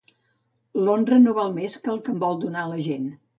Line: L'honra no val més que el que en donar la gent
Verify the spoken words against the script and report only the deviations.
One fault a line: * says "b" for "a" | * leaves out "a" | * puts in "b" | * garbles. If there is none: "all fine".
* puts in "vol"